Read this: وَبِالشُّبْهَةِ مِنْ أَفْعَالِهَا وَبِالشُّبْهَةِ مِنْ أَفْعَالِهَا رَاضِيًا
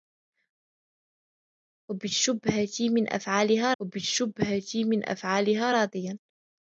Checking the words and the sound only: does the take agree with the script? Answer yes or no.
yes